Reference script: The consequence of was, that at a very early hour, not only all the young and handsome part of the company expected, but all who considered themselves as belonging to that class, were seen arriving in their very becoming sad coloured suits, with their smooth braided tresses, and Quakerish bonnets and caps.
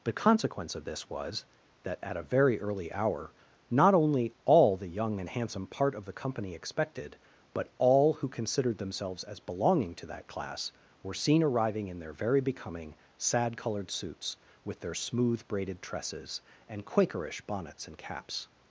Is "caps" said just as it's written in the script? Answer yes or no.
yes